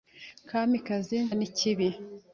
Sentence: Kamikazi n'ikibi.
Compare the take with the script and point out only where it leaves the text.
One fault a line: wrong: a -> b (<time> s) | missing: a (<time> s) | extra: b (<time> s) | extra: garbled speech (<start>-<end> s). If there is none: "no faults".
no faults